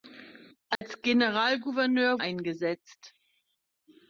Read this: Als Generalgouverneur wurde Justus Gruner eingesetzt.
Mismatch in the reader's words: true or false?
true